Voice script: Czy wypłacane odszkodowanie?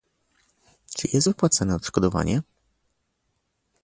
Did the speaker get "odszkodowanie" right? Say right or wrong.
right